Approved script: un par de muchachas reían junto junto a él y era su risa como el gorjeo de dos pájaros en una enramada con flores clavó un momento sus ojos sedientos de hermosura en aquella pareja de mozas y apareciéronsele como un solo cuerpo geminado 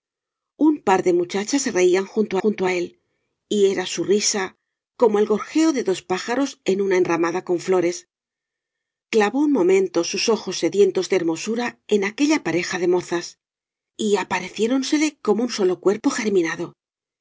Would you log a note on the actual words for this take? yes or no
no